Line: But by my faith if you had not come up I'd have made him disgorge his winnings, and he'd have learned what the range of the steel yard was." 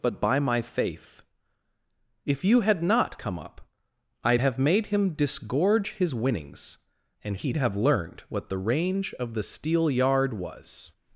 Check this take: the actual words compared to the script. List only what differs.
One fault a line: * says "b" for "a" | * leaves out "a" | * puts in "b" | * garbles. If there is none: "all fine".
all fine